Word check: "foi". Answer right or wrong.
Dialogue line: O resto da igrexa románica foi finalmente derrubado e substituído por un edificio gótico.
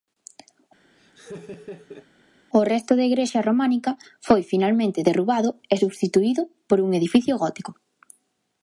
right